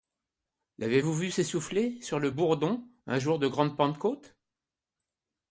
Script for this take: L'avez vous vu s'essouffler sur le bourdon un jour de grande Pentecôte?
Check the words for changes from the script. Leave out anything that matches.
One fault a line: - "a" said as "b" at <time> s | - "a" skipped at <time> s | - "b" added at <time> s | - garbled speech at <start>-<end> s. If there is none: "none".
none